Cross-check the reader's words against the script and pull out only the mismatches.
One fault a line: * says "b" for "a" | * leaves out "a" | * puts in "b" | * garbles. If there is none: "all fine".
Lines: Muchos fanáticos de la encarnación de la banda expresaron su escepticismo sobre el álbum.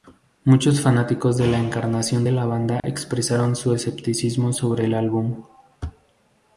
all fine